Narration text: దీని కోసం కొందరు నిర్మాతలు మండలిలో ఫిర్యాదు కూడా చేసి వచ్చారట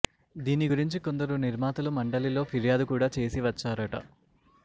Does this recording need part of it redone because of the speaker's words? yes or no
yes